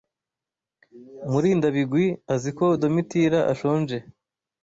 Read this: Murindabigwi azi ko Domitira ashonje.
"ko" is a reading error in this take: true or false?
false